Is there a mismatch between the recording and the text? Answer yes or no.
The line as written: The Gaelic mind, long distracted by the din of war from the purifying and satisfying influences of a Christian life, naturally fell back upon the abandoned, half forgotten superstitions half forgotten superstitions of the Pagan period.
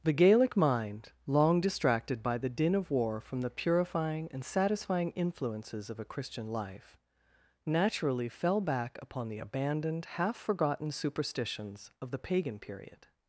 yes